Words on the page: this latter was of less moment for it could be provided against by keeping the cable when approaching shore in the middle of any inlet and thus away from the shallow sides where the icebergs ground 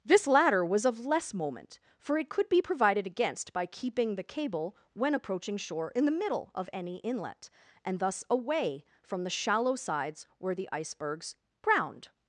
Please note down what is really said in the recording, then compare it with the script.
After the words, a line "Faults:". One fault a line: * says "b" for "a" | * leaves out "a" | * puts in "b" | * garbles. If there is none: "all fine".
this latter was of less moment for it could be provided against by keeping the cable when approaching shore in the middle of any inlet and thus away from the shallow sides where the icebergs ground
Faults:
all fine